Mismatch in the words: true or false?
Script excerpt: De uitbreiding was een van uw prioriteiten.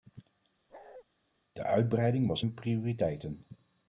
true